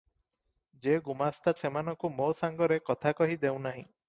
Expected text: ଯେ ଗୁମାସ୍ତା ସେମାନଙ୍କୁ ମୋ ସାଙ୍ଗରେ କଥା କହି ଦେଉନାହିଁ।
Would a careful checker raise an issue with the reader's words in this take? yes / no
no